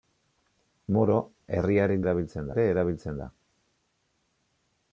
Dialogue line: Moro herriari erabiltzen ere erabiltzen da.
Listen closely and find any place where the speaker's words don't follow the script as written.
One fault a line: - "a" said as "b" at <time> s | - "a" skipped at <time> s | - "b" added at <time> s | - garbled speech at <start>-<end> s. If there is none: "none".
none